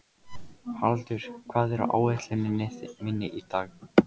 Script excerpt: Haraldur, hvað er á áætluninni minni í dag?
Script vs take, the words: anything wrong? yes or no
no